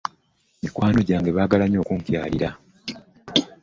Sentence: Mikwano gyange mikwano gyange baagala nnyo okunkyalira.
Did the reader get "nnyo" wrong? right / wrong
right